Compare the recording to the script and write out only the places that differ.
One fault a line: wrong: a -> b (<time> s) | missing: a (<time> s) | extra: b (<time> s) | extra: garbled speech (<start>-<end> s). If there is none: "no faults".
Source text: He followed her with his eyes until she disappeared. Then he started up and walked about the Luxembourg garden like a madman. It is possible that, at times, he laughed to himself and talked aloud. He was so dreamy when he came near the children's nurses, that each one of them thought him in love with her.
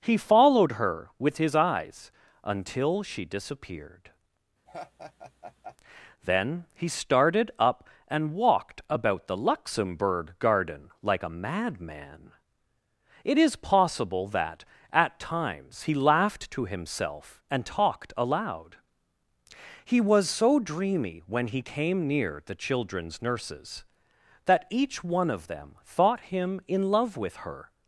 no faults